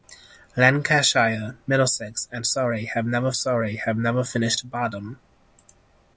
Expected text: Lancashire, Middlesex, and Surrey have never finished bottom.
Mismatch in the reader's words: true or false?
true